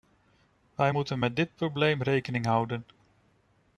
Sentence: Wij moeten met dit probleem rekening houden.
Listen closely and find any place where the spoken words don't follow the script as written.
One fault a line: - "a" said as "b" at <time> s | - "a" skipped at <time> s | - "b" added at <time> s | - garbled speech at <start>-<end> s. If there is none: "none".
none